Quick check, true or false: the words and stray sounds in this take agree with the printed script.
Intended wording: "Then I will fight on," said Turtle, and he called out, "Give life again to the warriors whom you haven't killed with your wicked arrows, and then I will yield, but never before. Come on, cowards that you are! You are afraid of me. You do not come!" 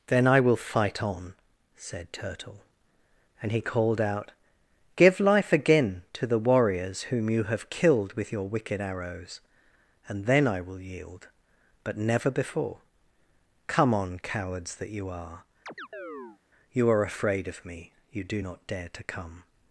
false